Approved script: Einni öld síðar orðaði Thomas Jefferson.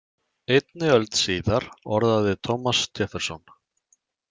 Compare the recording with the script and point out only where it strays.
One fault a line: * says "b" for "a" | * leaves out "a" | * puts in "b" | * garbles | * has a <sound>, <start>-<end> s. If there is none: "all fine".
all fine